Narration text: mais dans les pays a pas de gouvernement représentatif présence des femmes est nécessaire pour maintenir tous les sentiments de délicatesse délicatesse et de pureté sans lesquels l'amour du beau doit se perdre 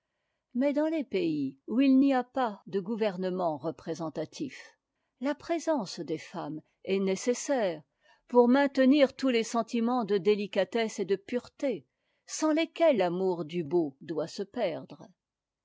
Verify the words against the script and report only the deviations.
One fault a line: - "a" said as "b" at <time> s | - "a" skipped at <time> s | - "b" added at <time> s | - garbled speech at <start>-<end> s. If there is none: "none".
- "où il n'y" added at 1.7 s
- "la" added at 5.2 s
- "délicatesse" skipped at 11.0 s